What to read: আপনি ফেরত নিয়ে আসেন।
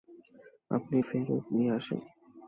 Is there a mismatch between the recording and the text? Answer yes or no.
no